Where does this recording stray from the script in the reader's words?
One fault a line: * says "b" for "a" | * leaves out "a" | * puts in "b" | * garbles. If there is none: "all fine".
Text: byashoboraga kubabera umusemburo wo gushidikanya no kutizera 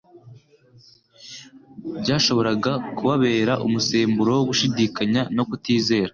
all fine